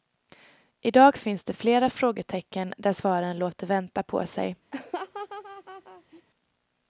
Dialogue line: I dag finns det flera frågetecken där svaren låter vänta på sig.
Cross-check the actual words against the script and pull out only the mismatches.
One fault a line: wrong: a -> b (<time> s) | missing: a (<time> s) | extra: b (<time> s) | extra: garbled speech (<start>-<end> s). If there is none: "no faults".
no faults